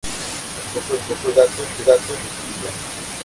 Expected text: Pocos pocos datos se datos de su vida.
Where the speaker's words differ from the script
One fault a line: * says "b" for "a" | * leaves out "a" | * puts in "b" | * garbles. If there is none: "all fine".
all fine